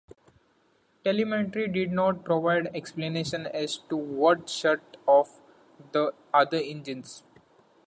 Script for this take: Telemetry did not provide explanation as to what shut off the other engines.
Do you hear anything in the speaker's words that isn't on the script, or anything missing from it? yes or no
no